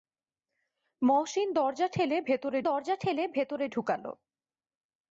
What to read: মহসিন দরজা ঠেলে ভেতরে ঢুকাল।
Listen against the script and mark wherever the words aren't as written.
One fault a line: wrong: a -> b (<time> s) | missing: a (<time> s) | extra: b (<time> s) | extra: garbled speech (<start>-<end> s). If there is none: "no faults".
extra: দরজা ঠেলে ভেতরে (2.6 s)